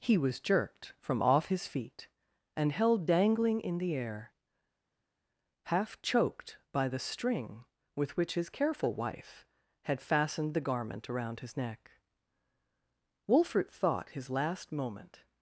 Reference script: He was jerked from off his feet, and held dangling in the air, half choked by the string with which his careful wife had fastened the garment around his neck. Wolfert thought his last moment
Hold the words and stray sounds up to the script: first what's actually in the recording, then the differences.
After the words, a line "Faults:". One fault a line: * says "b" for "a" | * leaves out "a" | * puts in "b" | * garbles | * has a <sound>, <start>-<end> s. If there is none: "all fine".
He was jerked from off his feet, and held dangling in the air, half choked by the string with which his careful wife had fastened the garment around his neck. Wolfert thought his last moment
Faults:
all fine